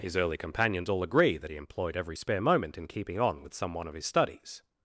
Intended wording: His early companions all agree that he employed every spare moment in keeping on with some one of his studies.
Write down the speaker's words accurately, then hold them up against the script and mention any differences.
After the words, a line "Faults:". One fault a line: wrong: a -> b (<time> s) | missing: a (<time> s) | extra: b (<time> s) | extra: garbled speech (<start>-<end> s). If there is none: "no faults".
His early companions all agree that he employed every spare moment in keeping on with some one of his studies.
Faults:
no faults